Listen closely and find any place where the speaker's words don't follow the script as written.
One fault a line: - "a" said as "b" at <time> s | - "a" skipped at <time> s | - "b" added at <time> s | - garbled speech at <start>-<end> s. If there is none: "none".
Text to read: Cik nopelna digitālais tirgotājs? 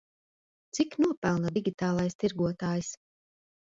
none